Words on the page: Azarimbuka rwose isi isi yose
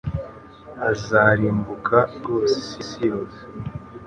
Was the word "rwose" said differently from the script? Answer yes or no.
no